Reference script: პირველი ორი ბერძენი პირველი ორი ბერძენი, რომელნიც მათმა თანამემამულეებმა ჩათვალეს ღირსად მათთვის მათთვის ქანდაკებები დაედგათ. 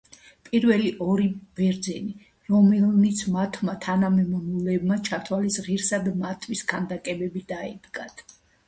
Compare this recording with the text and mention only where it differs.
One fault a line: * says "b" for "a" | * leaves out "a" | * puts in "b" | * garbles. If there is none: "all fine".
* leaves out "პირველი ორი ბერძენი"
* leaves out "მათთვის"